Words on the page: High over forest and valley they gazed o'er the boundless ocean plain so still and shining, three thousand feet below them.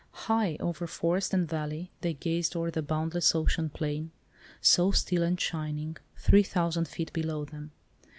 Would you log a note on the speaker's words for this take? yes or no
no